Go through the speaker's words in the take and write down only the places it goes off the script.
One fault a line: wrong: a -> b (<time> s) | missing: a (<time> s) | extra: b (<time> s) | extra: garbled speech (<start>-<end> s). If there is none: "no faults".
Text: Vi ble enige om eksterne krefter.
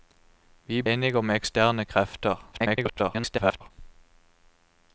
missing: ble (0.8 s)
extra: garbled speech (2.5-3.7 s)